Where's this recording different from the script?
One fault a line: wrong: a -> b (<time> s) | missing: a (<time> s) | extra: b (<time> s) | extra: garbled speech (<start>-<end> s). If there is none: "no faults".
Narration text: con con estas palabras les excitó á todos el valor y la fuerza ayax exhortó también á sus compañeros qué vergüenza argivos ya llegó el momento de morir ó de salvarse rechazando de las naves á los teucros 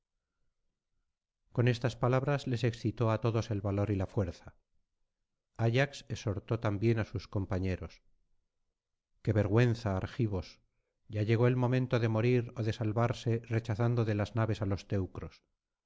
missing: con (1.7 s)